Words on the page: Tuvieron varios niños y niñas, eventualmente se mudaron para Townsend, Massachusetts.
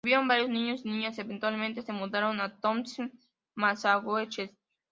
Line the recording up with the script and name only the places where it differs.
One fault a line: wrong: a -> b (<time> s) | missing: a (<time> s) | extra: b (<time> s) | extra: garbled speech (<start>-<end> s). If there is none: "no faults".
wrong: para -> a (2.4 s)